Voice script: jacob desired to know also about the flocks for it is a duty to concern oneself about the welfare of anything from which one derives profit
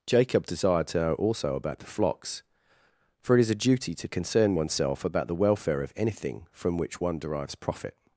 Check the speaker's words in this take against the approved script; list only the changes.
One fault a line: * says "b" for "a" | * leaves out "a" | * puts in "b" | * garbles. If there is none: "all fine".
all fine